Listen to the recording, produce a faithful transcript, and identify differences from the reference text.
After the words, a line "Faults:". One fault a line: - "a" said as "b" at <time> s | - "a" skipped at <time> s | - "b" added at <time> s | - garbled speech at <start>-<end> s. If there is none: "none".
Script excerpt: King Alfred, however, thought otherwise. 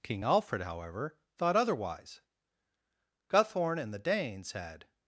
King Alfred, however, thought otherwise. Guthorn and the Danes had
Faults:
- "Guthorn and the Danes had" added at 3.3 s